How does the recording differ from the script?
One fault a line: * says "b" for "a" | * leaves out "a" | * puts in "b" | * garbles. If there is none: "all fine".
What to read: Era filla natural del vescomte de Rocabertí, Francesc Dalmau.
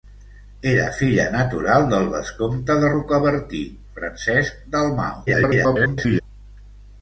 * garbles